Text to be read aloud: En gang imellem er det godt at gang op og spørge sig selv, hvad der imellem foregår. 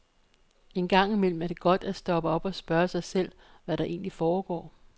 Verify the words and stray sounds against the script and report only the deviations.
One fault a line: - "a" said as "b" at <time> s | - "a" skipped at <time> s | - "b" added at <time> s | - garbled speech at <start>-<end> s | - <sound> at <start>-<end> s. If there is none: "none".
- "gang" said as "stoppe" at 1.9 s
- "imellem" said as "egentlig" at 3.8 s